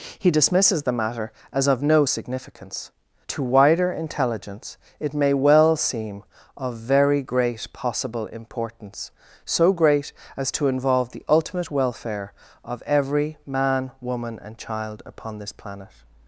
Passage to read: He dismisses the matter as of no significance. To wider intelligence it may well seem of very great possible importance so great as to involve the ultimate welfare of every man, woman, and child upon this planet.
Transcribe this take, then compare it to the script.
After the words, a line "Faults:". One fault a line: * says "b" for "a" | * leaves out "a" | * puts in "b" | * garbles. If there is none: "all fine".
He dismisses the matter as of no significance. To wider intelligence it may well seem of very great possible importance so great as to involve the ultimate welfare of every man, woman, and child upon this planet.
Faults:
all fine